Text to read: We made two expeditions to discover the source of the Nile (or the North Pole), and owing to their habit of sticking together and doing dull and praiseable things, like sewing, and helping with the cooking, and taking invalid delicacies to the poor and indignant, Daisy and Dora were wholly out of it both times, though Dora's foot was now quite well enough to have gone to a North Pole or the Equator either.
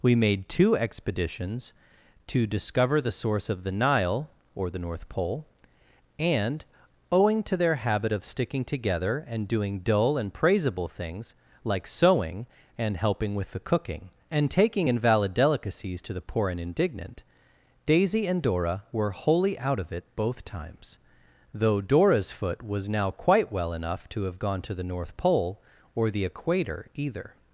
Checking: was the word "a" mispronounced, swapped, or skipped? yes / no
yes